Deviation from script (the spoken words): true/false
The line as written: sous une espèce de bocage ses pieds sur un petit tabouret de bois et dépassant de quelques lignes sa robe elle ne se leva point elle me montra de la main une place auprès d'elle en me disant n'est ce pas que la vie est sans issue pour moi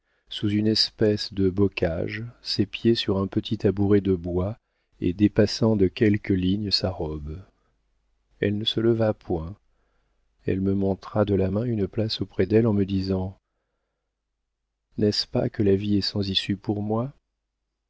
false